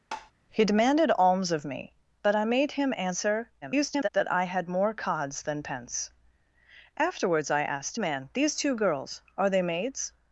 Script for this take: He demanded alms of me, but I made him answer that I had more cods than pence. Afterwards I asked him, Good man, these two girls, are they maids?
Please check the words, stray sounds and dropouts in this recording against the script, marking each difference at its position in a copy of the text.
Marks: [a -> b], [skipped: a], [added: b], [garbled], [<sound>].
[tap] He demanded alms of me, but I made him answer [garbled] that I had more cods than pence. Afterwards I asked [skipped: him, Good] man, these two girls, are they maids?